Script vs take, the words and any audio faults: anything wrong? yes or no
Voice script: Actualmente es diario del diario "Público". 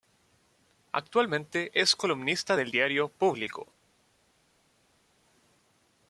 yes